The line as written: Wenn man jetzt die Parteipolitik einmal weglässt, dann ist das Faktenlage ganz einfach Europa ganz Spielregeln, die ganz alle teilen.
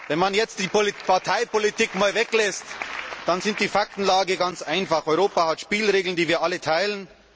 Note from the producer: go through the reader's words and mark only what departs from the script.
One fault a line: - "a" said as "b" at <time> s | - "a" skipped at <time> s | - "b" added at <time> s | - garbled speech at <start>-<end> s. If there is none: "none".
- "das" said as "die" at 3.6 s
- "ganz" said as "hat" at 5.5 s
- "ganz" said as "wir" at 6.3 s